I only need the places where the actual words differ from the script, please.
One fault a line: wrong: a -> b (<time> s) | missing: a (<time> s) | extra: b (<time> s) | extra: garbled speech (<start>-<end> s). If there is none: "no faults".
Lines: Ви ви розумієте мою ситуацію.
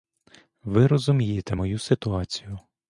missing: ви (0.9 s)